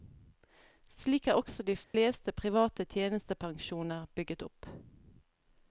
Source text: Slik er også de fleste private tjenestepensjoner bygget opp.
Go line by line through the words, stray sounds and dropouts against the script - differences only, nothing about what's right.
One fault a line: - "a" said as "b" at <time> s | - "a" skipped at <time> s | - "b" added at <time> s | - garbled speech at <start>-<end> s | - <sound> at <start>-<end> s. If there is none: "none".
- dropout at 1.8-1.9 s